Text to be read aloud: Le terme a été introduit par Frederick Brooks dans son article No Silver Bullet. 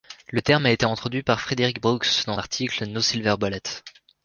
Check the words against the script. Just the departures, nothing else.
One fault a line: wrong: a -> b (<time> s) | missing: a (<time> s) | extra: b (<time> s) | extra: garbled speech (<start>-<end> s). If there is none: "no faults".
missing: son (2.4 s)